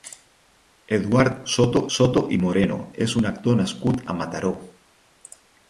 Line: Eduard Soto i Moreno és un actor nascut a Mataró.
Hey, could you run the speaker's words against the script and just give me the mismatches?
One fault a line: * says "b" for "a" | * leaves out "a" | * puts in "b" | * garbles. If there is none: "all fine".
* puts in "Soto"